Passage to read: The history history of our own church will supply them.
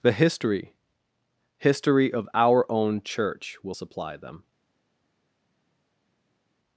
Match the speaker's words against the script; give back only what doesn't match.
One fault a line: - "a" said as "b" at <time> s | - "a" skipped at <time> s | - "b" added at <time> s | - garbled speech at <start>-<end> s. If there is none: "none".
none